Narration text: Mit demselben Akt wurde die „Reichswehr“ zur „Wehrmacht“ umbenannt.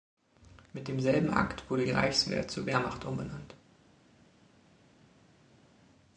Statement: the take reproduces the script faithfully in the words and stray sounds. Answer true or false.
true